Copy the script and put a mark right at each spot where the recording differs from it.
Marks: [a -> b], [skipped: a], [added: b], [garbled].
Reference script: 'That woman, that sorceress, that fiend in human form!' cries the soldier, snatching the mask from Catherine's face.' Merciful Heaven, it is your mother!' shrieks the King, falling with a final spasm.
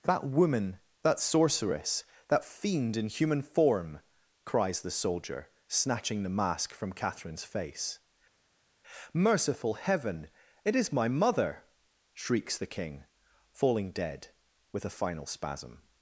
'That woman, that sorceress, that fiend in human form!' cries the soldier, snatching the mask from Catherine's face.' Merciful Heaven, it is [your -> my] mother!' shrieks the King, falling [added: dead] with a final spasm.